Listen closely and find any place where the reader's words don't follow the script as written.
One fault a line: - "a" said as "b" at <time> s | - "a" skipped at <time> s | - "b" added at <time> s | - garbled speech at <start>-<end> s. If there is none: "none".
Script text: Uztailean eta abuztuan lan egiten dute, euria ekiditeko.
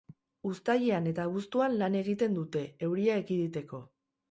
none